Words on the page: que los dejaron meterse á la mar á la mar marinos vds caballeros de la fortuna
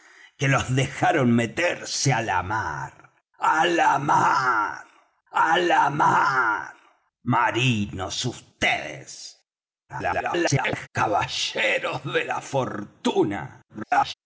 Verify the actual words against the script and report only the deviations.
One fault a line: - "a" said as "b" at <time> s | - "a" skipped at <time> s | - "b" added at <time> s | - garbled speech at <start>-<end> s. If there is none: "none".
- "á la mar" added at 5.3 s
- garbled speech at 9.9-10.9 s
- garbled speech at 13.7-14.1 s